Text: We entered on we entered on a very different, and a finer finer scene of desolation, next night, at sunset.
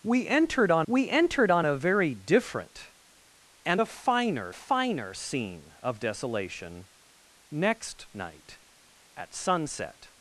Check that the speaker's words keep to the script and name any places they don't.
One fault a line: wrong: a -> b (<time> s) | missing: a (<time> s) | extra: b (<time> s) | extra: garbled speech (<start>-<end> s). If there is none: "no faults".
no faults